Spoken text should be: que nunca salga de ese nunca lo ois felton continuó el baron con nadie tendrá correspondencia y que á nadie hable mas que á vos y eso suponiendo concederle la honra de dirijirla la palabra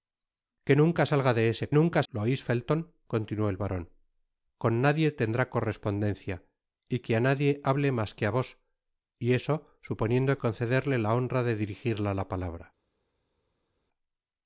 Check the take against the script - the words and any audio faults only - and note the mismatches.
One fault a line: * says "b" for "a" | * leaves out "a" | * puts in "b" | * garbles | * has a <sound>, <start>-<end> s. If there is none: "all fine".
all fine